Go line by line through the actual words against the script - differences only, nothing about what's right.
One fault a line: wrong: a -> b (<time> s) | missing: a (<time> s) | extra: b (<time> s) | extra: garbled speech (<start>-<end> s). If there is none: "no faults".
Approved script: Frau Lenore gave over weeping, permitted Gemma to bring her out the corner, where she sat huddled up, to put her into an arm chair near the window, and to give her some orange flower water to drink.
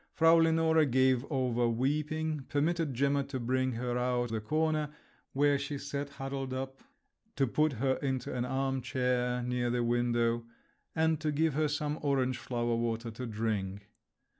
no faults